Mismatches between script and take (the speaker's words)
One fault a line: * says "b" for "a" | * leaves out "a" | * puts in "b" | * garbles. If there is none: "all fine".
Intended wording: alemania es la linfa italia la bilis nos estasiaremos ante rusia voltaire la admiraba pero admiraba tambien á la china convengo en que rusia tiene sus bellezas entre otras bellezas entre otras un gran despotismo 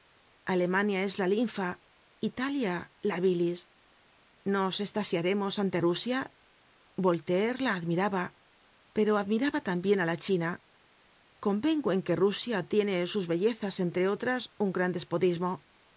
* leaves out "bellezas entre otras"